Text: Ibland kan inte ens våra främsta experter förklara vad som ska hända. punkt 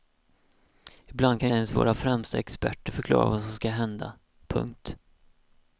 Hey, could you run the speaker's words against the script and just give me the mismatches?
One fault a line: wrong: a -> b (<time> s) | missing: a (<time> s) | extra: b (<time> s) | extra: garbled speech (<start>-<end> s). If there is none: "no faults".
missing: inte (1.5 s)